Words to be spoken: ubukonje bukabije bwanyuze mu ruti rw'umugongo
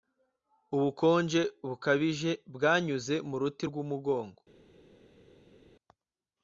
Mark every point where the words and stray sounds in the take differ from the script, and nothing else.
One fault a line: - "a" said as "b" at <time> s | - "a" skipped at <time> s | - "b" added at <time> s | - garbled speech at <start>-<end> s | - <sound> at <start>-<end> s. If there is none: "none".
none